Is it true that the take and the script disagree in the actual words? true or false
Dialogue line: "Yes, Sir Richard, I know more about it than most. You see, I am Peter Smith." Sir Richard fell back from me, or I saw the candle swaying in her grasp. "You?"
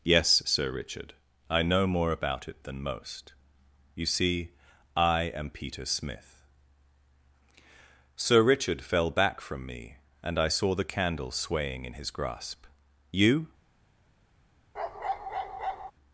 true